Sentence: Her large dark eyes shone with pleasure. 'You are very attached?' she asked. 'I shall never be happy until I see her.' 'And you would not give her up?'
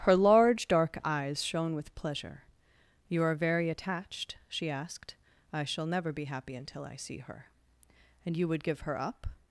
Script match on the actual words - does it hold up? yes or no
no